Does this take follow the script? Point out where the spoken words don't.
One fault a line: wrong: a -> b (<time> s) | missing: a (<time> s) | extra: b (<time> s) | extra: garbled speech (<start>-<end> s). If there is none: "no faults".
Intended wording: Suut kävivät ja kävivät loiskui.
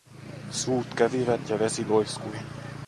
wrong: kävivät -> vesi (1.6 s)